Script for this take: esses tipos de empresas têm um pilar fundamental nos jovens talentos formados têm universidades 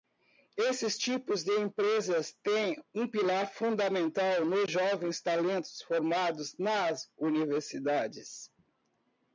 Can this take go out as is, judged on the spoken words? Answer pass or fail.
fail